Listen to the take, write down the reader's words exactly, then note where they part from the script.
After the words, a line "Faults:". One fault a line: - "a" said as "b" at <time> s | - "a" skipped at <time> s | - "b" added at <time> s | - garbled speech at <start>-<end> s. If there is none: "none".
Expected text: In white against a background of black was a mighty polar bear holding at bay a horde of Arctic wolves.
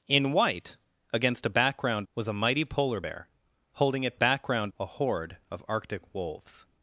In white against a background was a mighty polar bear holding at background a horde of Arctic wolves.
Faults:
- "of black" skipped at 2.1 s
- "bay" said as "background" at 4.1 s